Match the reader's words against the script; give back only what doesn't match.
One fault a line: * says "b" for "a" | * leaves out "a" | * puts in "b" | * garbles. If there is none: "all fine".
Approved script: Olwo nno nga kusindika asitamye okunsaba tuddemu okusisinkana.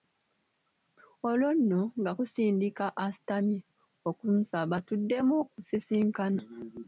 all fine